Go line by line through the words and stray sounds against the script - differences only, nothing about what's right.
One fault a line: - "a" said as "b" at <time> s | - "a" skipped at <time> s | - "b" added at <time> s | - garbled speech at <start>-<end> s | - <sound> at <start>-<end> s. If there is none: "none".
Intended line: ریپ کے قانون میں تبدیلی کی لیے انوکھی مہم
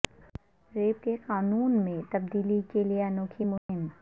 - "کی" said as "کے" at 2.7 s
- dropout at 3.6-3.7 s